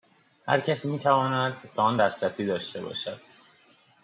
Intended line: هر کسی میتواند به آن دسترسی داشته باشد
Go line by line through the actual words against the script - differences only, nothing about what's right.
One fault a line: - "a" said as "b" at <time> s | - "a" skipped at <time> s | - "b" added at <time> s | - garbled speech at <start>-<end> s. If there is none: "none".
none